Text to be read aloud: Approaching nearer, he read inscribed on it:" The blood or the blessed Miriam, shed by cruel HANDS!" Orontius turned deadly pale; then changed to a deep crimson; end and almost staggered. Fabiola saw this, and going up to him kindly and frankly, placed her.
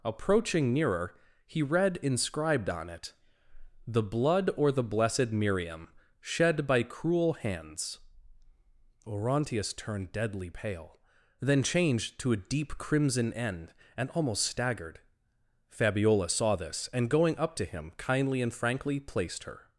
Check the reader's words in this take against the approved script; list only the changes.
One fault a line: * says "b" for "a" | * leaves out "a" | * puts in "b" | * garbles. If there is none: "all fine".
all fine